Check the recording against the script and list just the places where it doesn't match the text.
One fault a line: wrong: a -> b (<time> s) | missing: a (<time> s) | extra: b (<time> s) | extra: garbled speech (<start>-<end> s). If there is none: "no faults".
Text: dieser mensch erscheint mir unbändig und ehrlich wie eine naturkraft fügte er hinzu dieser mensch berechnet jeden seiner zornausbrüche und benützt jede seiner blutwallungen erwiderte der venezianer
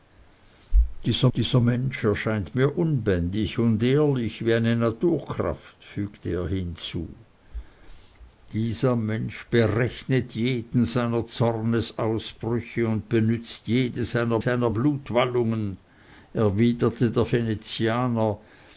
extra: dieser (1.4 s)
extra: seiner (14.4 s)